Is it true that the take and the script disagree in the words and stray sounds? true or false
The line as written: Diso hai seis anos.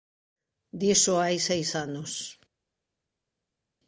false